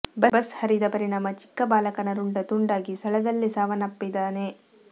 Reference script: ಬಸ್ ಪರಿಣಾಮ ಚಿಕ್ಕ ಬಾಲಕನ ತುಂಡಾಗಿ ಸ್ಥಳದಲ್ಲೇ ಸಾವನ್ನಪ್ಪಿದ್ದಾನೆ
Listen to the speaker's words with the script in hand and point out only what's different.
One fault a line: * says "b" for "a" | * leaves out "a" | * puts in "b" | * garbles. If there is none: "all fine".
* puts in "ಹರಿದ"
* puts in "ರುಂಡ"